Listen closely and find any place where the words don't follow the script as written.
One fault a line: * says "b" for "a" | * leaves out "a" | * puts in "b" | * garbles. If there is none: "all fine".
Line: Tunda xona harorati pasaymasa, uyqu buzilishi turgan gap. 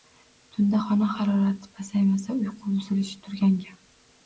all fine